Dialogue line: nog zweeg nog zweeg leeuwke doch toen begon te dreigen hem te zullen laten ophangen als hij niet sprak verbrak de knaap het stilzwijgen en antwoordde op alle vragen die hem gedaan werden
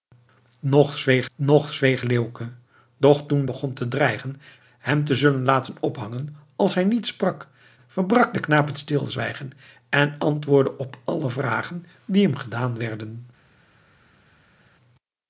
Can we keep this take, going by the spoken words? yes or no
yes